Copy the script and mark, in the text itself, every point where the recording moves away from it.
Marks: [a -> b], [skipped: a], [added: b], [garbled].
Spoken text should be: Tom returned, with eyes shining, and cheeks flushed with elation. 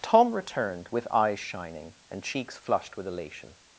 Tom returned, with eyes shining, and cheeks flushed with elation.